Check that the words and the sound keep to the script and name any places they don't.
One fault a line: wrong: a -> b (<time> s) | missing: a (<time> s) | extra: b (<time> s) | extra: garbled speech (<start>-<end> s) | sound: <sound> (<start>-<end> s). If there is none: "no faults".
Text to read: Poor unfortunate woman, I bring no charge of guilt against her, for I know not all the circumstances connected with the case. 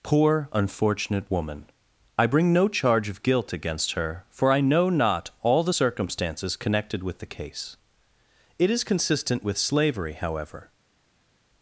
extra: It is consistent with slavery however (8.6 s)